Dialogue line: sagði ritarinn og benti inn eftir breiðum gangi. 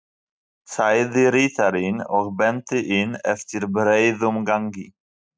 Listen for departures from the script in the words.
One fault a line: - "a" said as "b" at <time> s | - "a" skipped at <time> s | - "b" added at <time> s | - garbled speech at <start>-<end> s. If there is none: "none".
none